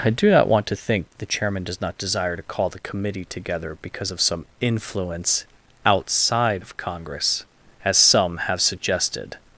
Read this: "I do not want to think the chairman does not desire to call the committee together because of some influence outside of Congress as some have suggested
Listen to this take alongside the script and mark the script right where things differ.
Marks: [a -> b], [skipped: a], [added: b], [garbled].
"I do not want to think the chairman does not desire to call the committee together because of some influence outside of Congress as some have suggested